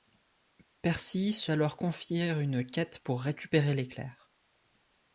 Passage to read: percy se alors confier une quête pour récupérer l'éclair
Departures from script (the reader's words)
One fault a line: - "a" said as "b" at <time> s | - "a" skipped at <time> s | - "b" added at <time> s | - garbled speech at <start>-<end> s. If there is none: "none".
none